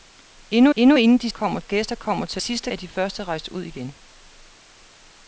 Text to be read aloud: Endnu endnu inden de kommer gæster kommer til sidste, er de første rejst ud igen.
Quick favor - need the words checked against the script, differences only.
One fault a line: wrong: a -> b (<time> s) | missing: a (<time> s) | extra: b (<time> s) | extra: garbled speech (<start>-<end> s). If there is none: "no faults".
no faults